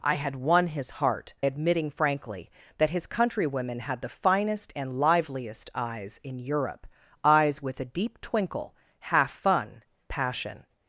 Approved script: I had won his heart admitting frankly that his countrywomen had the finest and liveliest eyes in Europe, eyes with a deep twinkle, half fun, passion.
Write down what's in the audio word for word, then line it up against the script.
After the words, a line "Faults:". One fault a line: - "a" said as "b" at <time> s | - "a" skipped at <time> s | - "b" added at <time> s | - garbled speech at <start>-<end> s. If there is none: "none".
I had won his heart admitting frankly that his countrywomen had the finest and liveliest eyes in Europe, eyes with a deep twinkle, half fun, passion.
Faults:
none